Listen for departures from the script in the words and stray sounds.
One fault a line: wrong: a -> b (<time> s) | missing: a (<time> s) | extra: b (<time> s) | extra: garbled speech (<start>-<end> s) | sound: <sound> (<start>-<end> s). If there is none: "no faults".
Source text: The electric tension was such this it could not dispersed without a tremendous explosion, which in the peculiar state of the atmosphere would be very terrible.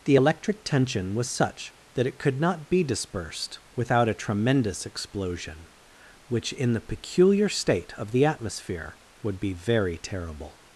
wrong: this -> that (1.9 s)
extra: be (2.7 s)